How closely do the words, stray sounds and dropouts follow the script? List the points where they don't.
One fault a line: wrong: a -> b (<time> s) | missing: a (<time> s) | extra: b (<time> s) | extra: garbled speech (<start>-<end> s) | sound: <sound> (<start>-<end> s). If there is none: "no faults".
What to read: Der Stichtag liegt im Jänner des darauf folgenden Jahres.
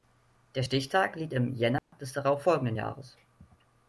sound: dropout (1.8-1.9 s)